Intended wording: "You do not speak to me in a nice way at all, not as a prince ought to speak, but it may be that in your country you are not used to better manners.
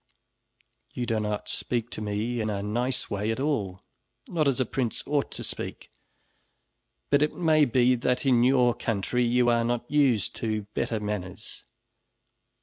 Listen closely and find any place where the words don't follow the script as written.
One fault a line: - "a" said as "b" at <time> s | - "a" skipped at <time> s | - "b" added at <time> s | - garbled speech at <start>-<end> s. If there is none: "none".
none